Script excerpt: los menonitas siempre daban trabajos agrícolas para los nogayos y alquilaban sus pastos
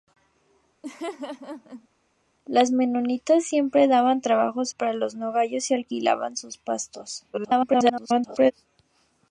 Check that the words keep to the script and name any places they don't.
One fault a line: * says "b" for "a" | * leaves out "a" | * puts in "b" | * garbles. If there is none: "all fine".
* leaves out "agrícolas"
* garbles